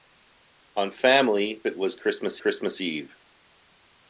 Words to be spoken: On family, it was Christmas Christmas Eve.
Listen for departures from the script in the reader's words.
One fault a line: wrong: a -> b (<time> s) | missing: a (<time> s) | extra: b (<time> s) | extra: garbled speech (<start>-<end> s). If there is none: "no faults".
no faults